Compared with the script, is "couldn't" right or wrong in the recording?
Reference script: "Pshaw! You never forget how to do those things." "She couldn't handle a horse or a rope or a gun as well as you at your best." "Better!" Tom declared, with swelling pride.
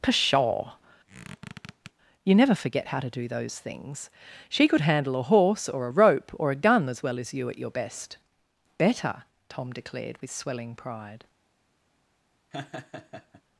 wrong